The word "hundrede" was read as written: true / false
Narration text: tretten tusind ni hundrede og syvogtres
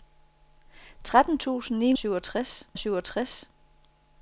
false